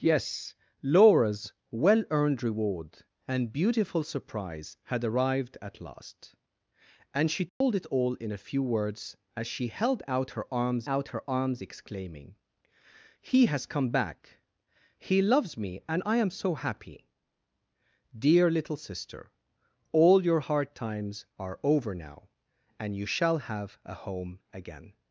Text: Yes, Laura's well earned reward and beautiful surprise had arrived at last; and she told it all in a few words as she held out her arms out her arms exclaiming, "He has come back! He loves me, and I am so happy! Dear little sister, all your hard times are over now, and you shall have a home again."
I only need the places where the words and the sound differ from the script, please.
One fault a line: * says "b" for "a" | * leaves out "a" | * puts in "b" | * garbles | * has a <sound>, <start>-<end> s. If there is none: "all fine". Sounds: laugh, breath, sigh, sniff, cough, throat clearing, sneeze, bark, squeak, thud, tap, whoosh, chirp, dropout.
* has a dropout, 7.5-7.6 s